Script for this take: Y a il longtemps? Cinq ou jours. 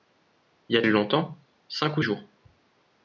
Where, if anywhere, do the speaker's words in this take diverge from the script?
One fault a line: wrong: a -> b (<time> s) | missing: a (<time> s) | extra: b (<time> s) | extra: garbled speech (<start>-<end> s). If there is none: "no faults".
no faults